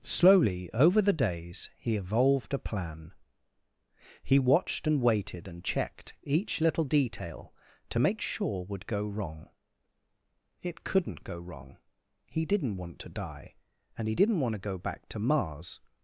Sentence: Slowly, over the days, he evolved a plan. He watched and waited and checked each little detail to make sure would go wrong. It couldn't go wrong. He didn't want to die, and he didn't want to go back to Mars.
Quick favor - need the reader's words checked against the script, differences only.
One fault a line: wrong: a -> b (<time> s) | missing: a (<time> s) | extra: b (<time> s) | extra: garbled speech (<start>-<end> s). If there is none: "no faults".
no faults